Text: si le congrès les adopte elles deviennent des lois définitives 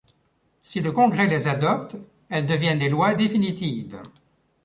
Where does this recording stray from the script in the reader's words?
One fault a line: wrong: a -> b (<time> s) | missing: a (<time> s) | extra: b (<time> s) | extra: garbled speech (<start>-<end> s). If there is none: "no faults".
no faults